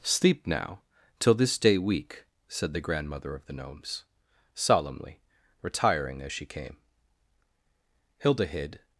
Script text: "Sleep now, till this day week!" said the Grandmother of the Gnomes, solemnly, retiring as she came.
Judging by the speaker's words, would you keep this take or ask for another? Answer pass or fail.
fail